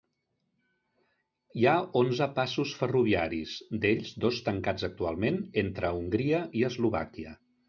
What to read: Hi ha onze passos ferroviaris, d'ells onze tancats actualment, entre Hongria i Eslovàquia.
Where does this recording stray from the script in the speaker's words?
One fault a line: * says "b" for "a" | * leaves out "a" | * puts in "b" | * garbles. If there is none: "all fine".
* says "dos" for "onze"